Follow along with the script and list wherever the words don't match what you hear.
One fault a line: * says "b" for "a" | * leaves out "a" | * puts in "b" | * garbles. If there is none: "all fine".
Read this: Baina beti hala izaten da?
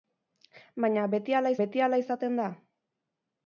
* puts in "beti hala"